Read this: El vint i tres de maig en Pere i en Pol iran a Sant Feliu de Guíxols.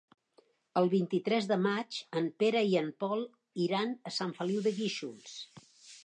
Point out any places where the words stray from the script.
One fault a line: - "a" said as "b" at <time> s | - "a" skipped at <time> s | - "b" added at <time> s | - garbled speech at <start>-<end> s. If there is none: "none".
none